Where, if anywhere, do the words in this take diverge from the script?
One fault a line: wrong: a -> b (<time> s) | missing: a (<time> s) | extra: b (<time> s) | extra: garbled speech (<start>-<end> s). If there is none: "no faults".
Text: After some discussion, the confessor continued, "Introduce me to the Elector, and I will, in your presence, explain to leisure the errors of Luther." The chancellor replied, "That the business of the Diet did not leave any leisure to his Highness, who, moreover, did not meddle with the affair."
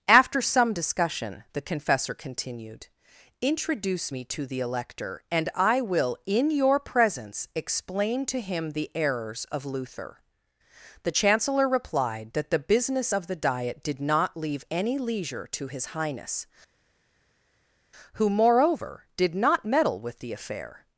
wrong: leisure -> him (8.4 s)